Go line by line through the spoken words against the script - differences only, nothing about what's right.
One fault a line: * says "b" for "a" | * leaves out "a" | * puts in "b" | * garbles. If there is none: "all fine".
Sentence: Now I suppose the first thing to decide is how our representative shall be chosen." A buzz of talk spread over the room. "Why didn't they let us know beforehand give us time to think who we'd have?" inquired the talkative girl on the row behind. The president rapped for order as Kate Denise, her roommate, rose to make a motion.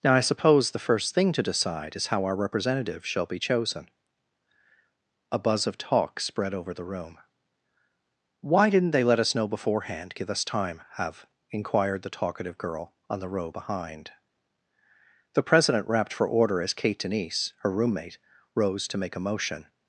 * leaves out "to think who we'd"